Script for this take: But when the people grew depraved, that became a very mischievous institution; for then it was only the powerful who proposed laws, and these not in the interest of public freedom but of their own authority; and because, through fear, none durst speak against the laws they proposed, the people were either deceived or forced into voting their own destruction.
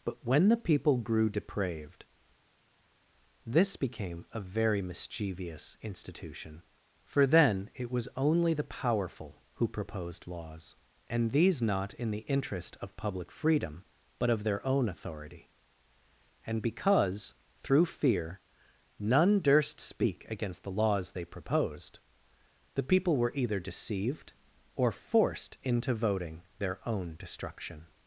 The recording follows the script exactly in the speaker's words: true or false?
false